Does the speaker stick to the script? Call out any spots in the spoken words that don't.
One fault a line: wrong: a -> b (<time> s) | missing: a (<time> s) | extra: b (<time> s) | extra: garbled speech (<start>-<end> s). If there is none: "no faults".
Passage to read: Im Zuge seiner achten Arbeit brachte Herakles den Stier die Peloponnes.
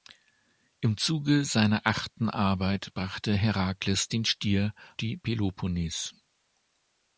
no faults